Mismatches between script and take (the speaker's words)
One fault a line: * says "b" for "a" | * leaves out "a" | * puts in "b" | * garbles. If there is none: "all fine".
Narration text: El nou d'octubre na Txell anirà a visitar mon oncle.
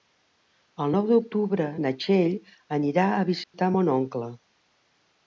all fine